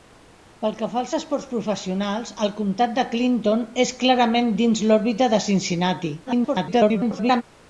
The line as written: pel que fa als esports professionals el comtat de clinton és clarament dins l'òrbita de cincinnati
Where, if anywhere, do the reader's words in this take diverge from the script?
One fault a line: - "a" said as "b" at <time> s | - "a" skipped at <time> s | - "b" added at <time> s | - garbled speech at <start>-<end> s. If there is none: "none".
- garbled speech at 6.3-7.4 s